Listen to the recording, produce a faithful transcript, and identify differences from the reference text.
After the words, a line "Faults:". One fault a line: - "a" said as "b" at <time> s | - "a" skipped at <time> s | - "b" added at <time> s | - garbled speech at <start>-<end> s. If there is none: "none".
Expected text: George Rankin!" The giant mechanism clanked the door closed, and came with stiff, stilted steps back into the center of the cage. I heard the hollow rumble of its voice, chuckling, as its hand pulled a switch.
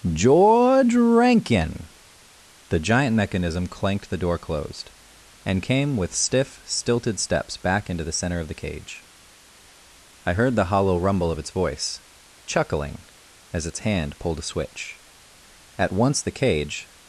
George Rankin!" The giant mechanism clanked the door closed, and came with stiff, stilted steps back into the center of the cage. I heard the hollow rumble of its voice, chuckling, as its hand pulled a switch. At once the cage
Faults:
- "At once the cage" added at 15.8 s